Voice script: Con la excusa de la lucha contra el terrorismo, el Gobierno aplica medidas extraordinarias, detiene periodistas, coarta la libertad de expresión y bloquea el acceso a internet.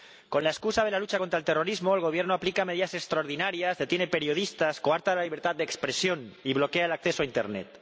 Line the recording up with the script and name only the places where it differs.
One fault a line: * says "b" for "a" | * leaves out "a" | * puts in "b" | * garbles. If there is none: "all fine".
all fine